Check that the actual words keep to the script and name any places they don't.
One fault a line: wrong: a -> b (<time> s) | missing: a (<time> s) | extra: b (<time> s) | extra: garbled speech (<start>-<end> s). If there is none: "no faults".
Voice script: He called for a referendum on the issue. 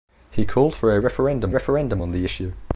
extra: referendum (1.5 s)